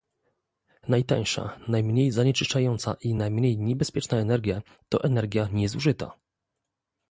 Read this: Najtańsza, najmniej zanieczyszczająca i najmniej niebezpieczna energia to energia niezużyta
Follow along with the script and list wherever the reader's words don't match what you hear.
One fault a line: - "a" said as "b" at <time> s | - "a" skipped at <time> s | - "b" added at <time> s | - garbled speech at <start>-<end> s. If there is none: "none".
none